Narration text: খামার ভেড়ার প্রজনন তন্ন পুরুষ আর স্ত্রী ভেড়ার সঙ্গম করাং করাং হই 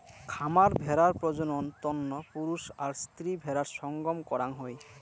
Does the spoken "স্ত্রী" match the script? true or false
true